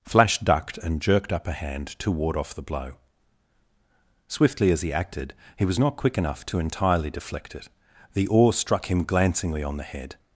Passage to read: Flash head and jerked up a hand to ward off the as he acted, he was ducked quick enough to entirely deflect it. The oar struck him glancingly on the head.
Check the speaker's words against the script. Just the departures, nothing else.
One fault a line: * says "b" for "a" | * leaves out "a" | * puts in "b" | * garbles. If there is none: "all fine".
* says "ducked" for "head"
* puts in "blow Swiftly"
* says "not" for "ducked"